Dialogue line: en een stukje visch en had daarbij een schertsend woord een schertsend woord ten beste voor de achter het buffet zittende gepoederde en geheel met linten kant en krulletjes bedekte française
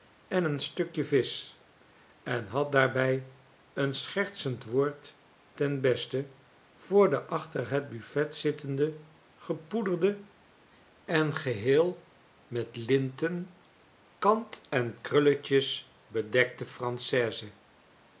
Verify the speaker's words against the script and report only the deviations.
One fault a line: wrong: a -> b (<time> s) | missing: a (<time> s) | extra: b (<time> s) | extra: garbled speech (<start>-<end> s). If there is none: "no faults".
missing: een schertsend woord (5.2 s)